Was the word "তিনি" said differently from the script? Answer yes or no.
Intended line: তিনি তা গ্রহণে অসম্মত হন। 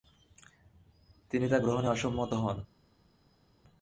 no